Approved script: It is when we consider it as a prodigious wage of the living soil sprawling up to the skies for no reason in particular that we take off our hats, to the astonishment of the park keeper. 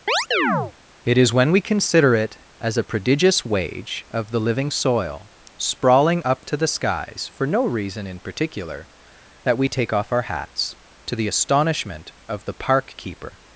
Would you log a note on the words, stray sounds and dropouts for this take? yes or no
yes